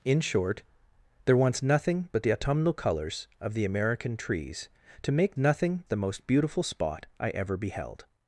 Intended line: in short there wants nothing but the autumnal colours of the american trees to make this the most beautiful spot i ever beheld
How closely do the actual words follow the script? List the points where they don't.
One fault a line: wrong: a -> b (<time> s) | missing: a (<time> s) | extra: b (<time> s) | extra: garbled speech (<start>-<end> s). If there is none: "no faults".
wrong: this -> nothing (5.4 s)